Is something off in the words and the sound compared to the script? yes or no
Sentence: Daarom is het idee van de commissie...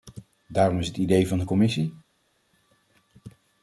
no